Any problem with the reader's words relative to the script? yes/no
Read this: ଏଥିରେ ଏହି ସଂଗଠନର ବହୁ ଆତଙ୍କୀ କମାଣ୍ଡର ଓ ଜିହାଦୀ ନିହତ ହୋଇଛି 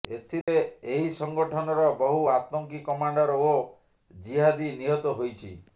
no